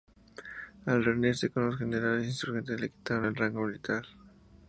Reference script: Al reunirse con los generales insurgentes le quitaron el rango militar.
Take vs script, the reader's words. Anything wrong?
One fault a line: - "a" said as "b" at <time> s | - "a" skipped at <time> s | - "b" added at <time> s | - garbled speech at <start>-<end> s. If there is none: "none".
none